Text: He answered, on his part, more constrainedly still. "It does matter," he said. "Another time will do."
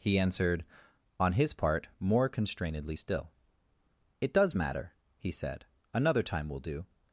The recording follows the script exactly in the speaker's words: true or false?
true